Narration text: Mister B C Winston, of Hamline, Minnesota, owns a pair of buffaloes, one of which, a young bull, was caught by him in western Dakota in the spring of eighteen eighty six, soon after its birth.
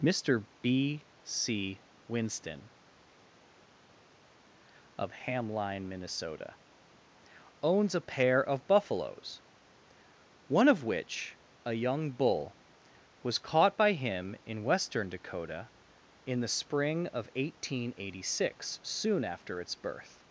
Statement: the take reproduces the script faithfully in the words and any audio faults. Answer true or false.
true